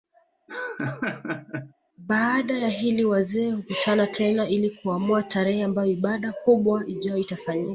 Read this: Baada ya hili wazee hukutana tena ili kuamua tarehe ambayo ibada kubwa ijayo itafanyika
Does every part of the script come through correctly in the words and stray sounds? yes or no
no